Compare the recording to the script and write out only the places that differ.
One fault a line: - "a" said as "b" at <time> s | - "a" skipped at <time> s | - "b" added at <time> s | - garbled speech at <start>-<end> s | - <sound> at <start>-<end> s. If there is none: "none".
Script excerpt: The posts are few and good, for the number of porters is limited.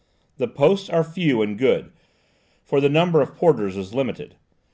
none